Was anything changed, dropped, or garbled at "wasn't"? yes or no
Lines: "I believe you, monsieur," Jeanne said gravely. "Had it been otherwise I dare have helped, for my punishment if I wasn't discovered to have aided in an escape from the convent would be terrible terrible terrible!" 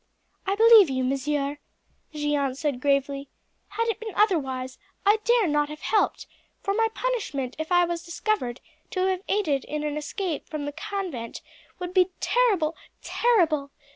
yes